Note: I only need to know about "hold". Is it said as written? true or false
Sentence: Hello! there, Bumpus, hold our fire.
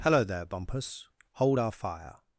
true